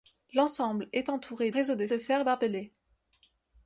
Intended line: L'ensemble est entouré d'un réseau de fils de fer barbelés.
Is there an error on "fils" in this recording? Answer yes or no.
yes